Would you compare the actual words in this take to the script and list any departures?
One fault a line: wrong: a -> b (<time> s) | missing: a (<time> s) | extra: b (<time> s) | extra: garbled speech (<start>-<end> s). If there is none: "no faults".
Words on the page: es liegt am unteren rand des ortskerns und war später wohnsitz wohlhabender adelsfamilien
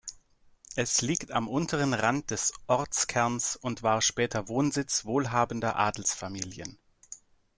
no faults